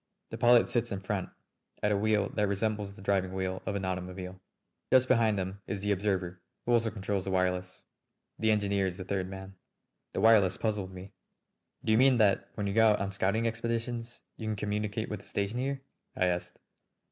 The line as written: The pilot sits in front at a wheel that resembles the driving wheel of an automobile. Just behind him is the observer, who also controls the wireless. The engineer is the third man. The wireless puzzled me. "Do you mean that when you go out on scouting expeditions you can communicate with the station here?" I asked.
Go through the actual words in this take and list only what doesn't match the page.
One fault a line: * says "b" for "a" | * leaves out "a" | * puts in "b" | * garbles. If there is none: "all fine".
all fine